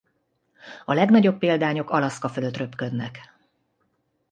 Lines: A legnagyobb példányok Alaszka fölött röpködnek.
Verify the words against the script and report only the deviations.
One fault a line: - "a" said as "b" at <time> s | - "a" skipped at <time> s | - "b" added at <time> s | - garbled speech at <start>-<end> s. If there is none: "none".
none